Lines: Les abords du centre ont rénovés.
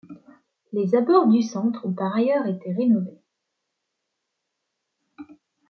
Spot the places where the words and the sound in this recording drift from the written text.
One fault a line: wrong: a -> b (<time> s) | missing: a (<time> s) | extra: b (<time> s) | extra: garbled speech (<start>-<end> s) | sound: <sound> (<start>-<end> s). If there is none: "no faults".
extra: par ailleurs été (1.9 s)